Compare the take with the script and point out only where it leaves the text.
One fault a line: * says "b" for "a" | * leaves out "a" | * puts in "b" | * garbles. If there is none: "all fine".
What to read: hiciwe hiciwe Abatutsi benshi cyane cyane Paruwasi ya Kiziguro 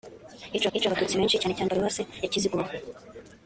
all fine